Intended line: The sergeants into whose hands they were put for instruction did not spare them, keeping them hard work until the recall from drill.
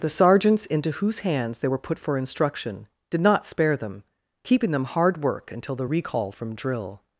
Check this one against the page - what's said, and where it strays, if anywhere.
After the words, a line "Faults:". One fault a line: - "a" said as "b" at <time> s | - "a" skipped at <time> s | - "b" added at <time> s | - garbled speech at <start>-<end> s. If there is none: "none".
The sergeants into whose hands they were put for instruction did not spare them, keeping them hard work until the recall from drill.
Faults:
none